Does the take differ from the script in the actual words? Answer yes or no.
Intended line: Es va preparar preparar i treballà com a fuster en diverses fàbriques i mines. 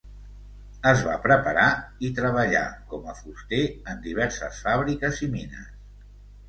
yes